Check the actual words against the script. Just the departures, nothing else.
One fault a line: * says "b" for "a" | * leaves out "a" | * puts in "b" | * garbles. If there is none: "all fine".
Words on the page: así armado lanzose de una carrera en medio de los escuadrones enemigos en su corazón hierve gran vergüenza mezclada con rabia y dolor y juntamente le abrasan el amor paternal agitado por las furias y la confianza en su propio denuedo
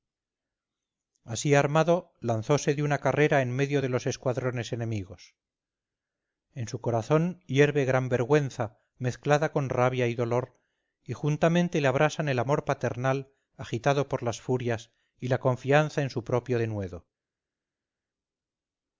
all fine